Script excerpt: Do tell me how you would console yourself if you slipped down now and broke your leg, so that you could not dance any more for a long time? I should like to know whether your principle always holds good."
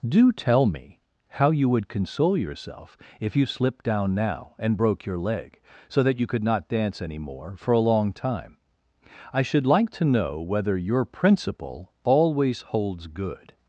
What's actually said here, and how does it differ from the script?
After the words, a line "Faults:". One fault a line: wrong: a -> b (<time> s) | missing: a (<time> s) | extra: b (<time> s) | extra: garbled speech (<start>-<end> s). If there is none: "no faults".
Do tell me how you would console yourself if you slipped down now and broke your leg, so that you could not dance any more for a long time? I should like to know whether your principle always holds good."
Faults:
no faults